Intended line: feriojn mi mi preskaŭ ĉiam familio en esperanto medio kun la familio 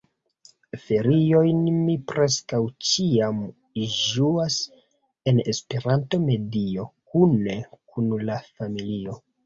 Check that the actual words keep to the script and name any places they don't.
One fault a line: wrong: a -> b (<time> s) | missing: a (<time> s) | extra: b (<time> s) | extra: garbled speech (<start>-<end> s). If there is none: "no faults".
missing: mi (2.0 s)
wrong: familio -> ĝuas (4.0 s)
extra: kune (7.2 s)